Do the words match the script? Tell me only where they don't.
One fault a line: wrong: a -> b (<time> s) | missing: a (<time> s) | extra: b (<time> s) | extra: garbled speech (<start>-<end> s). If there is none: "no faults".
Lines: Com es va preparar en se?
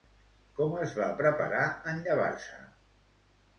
extra: llevar (2.1 s)